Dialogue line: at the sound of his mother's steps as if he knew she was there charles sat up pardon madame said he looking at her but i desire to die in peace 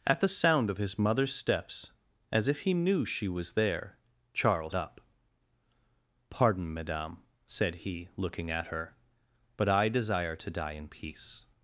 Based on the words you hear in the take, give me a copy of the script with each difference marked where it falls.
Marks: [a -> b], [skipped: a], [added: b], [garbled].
at the sound of his mother's steps as if he knew she was there charles [skipped: sat] up pardon madame said he looking at her but i desire to die in peace